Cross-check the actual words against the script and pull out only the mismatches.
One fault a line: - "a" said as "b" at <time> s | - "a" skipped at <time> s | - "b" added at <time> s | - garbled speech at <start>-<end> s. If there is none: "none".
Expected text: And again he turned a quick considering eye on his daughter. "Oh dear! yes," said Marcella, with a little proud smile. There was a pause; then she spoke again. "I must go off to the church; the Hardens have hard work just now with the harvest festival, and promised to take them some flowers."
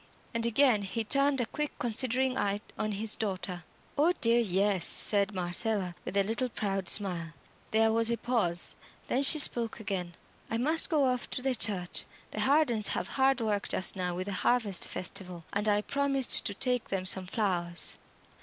- "I" added at 15.7 s